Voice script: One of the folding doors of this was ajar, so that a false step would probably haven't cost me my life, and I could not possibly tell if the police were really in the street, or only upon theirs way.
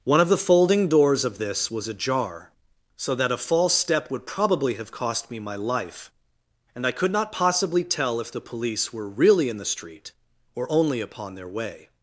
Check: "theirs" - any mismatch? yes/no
yes